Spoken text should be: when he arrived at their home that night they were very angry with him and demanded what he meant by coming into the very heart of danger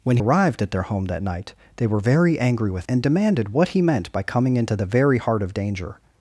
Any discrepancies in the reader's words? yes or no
yes